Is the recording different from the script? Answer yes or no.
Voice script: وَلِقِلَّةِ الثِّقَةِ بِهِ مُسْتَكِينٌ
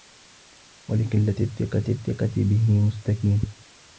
yes